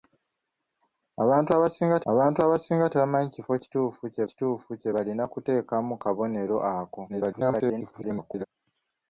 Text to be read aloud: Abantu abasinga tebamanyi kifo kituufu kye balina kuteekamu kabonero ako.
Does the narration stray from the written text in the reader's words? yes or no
yes